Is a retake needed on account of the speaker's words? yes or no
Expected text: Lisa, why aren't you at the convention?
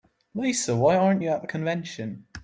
no